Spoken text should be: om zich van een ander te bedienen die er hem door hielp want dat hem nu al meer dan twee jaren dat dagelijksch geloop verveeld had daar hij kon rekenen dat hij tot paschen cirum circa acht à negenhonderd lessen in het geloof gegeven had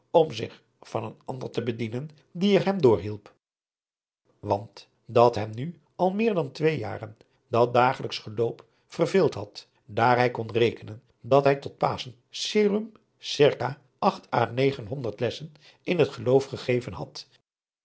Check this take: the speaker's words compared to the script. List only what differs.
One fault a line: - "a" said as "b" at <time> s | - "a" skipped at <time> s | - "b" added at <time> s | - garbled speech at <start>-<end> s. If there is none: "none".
none